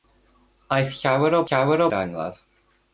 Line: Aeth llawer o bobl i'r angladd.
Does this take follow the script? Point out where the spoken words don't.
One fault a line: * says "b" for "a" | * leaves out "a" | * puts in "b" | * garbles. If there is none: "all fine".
* says "llawer" for "bobl"